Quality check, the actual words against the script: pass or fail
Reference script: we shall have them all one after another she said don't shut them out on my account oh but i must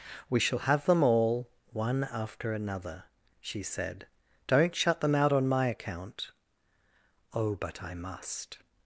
pass